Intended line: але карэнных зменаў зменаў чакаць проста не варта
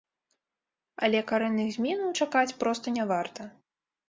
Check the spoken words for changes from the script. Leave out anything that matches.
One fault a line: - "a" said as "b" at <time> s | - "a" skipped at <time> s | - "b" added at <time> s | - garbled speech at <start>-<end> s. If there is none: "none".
- "зменаў" skipped at 2.1 s